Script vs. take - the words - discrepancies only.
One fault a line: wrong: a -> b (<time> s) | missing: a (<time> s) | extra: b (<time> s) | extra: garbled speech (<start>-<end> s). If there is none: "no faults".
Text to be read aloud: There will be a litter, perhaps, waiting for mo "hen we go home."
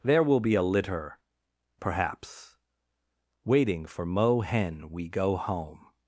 no faults